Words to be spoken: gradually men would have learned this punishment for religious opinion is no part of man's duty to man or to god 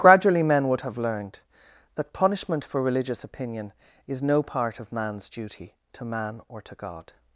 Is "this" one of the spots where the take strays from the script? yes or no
yes